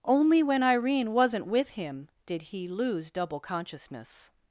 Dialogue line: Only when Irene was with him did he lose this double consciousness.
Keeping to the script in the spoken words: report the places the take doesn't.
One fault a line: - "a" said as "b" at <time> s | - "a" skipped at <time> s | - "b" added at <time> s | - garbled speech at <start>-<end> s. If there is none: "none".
- "was" said as "wasn't" at 1.1 s
- "this" skipped at 3.1 s